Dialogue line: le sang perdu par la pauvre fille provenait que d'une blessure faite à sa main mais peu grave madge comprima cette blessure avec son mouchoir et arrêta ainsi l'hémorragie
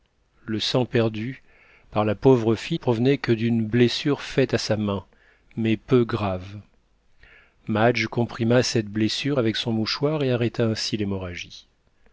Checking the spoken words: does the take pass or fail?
pass